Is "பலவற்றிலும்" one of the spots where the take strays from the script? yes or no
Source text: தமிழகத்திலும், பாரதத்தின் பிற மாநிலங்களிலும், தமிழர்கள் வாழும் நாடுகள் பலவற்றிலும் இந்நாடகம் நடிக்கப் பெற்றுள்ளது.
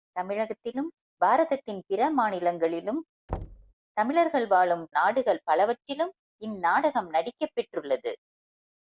no